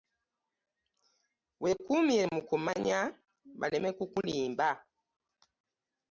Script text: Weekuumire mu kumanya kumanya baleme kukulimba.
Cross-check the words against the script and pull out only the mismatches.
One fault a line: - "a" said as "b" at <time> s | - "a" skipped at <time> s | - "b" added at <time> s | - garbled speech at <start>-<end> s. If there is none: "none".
- "kumanya" skipped at 3.0 s